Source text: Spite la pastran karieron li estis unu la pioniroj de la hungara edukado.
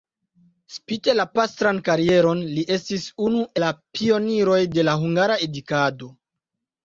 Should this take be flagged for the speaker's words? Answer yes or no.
no